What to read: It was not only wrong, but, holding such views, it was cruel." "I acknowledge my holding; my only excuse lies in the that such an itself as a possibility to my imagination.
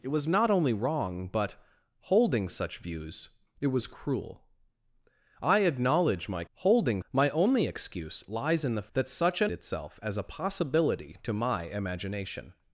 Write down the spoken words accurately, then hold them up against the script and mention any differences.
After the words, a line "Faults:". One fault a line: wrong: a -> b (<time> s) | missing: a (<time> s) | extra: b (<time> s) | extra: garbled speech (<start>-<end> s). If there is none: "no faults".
It was not only wrong, but, holding such views, it was cruel." "I acknowledge my holding; my only excuse lies in the that such an itself as a possibility to my imagination.
Faults:
no faults